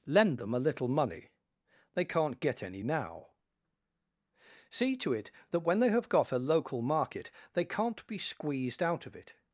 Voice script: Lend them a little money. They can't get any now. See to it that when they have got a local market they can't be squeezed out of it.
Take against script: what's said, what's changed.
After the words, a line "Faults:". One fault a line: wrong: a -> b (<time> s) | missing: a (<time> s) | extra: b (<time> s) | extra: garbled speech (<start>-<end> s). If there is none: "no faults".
Lend them a little money. They can't get any now. See to it that when they have got a local market they can't be squeezed out of it.
Faults:
no faults